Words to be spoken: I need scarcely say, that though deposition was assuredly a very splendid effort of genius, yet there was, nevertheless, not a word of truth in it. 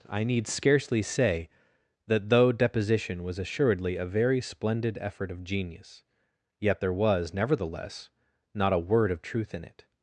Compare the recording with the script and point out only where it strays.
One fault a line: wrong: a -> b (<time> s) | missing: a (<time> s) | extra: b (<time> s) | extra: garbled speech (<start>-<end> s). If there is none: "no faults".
no faults